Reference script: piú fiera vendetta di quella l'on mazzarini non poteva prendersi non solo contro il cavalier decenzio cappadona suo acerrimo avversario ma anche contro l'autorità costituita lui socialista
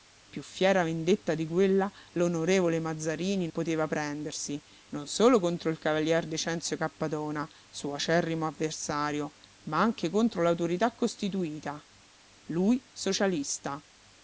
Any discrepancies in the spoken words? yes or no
yes